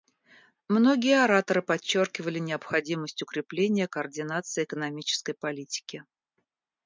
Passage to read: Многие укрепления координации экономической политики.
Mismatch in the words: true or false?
true